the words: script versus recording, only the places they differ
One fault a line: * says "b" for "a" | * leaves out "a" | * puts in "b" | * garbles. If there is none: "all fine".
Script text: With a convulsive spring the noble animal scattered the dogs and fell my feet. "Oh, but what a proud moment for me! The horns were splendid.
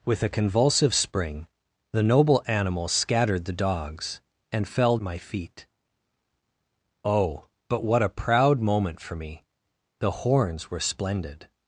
all fine